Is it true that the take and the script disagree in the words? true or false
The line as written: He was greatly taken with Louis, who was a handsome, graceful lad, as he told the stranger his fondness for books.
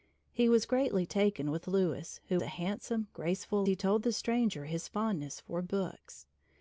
true